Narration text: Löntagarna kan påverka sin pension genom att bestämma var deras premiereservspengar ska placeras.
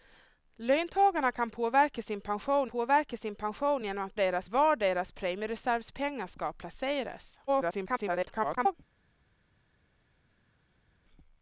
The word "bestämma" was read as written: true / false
false